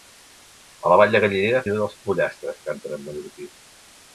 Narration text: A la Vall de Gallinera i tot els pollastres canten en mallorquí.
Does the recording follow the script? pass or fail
pass